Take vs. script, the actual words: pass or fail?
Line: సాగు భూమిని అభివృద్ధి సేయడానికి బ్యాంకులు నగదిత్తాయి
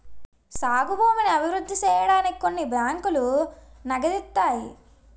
fail